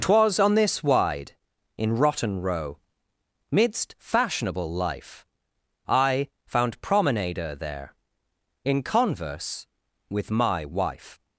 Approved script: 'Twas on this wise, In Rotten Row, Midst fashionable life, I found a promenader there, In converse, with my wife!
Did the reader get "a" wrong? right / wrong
wrong